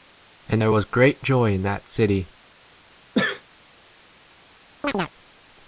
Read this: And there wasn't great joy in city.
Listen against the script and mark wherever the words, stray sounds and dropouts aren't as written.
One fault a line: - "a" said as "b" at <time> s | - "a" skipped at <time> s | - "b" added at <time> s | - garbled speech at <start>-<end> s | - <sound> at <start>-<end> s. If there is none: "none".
- "wasn't" said as "was" at 0.7 s
- "that" added at 1.6 s
- sneeze at 3.1-3.4 s
- chirp at 4.8-5.1 s